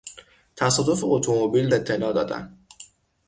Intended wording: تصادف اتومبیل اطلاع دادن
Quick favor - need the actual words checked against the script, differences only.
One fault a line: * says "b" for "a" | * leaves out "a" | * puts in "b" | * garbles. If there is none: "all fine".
all fine